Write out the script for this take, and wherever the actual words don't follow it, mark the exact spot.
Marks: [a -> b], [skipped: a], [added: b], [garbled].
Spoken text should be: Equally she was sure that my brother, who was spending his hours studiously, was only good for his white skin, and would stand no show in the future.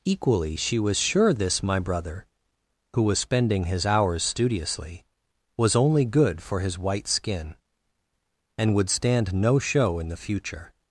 Equally she was sure [that -> this] my brother, who was spending his hours studiously, was only good for his white skin, and would stand no show in the future.